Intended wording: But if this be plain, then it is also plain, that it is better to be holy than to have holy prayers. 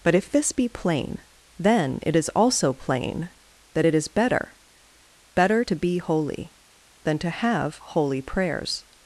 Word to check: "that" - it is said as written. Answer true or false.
true